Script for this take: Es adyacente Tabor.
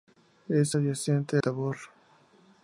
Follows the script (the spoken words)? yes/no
yes